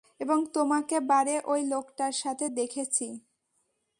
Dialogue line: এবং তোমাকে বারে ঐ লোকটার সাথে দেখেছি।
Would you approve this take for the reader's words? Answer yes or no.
yes